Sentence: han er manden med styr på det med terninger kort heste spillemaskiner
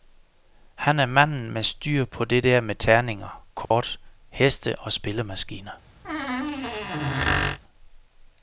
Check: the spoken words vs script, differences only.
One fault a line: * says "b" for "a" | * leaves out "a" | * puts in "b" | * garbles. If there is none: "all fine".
* puts in "der"
* puts in "og"